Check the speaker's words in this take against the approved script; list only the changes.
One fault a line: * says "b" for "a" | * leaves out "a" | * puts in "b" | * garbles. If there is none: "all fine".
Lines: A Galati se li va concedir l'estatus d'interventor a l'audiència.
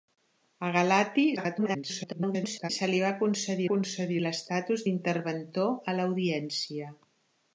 * garbles
* puts in "concedir"